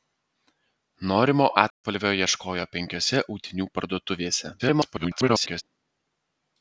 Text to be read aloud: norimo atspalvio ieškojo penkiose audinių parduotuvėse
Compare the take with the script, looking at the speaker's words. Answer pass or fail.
fail